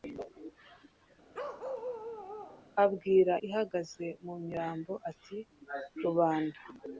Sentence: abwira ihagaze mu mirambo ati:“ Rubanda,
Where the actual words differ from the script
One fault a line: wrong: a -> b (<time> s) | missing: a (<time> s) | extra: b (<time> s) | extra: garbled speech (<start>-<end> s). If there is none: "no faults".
no faults